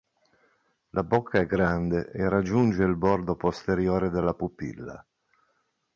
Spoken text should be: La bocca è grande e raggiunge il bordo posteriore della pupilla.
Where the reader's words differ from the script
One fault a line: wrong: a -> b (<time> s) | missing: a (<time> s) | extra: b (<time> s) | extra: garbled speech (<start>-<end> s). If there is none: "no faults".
no faults